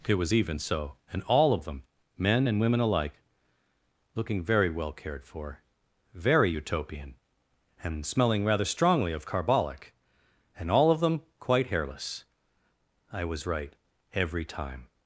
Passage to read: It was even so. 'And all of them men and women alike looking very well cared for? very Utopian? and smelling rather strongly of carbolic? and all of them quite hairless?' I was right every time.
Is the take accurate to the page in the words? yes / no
yes